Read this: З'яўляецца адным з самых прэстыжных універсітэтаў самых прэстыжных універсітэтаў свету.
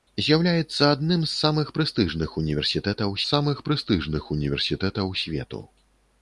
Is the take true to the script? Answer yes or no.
yes